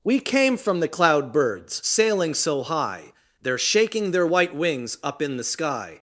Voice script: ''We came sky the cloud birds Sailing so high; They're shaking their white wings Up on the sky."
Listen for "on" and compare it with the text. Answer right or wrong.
wrong